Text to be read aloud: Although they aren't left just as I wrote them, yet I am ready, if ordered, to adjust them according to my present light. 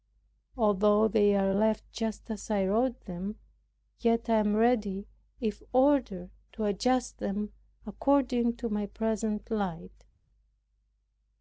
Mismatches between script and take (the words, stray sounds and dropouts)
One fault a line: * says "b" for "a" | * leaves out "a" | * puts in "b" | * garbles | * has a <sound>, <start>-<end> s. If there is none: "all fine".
* says "are" for "aren't"